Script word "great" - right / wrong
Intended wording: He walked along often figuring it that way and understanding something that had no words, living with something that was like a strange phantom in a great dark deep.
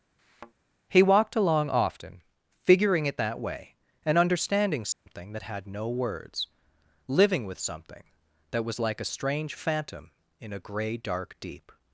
wrong